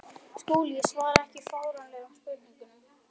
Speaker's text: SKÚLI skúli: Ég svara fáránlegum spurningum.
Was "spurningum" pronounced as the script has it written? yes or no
yes